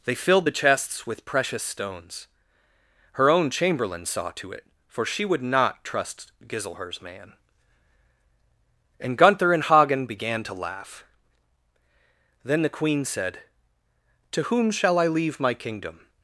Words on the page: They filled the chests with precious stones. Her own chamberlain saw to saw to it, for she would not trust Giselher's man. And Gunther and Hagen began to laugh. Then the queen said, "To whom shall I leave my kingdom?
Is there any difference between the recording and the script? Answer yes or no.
yes